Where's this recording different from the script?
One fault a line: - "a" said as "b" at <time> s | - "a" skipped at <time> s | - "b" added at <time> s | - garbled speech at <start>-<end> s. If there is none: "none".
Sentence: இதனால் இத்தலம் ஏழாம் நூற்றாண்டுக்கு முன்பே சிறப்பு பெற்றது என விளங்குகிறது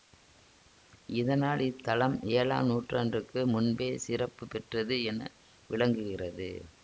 none